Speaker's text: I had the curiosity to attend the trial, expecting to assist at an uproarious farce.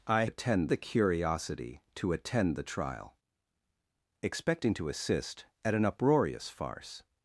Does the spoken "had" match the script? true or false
false